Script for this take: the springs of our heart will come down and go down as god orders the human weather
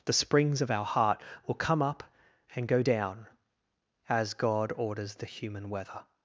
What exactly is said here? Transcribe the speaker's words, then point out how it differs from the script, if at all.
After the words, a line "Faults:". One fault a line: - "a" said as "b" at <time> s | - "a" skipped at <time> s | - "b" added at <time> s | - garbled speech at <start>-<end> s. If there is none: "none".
the springs of our heart will come up and go down as god orders the human weather
Faults:
- "down" said as "up" at 1.8 s